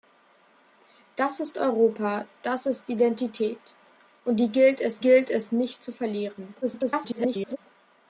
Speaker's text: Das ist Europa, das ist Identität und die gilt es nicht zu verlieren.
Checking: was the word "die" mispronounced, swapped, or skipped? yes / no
no